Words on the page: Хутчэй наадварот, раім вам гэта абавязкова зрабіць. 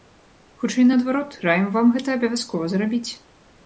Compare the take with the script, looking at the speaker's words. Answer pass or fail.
pass